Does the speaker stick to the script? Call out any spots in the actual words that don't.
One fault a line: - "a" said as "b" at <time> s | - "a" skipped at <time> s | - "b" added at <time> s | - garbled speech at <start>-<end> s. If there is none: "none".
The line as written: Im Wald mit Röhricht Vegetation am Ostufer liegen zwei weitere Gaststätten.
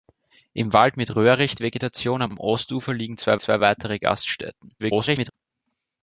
- "am" added at 2.3 s
- "zwei" added at 3.4 s
- garbled speech at 4.8-5.3 s